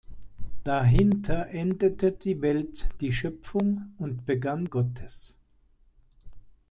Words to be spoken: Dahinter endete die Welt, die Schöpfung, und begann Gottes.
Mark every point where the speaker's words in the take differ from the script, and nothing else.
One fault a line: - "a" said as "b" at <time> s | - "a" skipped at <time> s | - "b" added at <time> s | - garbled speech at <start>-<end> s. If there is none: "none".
none